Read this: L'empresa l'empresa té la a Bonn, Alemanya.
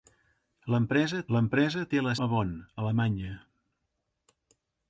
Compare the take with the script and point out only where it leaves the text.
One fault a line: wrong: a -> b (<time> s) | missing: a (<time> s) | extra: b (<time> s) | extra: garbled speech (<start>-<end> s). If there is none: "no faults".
no faults